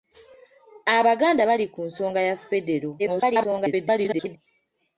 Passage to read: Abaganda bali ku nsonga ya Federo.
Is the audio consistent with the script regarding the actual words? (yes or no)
no